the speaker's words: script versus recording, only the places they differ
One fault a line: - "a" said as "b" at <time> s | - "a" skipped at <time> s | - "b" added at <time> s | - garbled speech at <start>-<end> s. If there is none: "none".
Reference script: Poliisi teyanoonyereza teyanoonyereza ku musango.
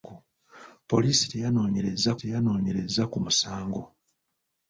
none